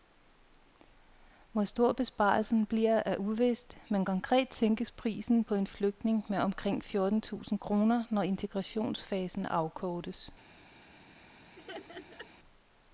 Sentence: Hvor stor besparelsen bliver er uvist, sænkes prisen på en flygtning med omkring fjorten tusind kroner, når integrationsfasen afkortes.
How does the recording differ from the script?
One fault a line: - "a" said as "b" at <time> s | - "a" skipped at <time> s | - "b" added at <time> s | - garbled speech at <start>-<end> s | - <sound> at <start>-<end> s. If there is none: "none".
- "men konkret" added at 3.9 s
- laugh at 11.5-12.3 s